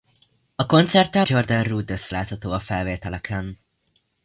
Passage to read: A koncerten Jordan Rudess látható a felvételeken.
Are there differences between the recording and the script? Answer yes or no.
no